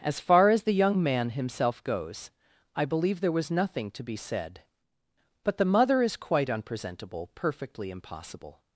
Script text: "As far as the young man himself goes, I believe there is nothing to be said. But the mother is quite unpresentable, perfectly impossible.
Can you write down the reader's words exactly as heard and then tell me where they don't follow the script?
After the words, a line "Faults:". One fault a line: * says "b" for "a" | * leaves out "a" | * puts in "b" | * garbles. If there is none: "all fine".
"As far as the young man himself goes, I believe there was nothing to be said. But the mother is quite unpresentable, perfectly impossible.
Faults:
* says "was" for "is"